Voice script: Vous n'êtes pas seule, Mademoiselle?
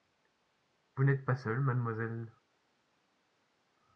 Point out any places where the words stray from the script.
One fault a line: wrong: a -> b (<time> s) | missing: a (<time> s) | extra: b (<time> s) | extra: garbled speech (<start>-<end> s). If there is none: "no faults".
no faults